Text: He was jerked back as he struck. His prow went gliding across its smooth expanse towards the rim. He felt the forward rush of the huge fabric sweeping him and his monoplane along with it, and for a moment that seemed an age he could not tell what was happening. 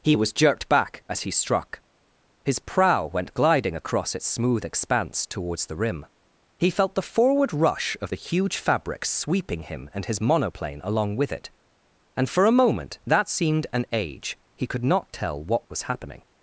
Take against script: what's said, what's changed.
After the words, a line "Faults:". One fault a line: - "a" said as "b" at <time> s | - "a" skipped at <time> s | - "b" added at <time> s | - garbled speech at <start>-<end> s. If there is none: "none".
He was jerked back as he struck. His prow went gliding across its smooth expanse towards the rim. He felt the forward rush of the huge fabric sweeping him and his monoplane along with it, and for a moment that seemed an age he could not tell what was happening.
Faults:
none